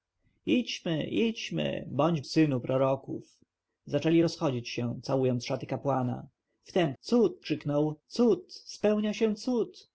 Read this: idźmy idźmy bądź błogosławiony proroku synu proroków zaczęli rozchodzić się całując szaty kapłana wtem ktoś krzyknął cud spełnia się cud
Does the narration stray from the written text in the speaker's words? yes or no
yes